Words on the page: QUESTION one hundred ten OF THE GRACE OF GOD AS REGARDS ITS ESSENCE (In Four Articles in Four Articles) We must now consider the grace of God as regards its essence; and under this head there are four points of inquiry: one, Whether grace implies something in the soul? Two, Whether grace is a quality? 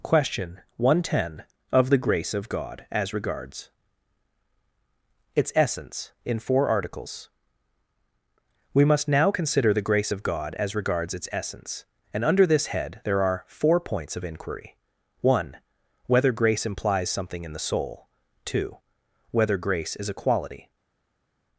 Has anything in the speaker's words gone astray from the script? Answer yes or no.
yes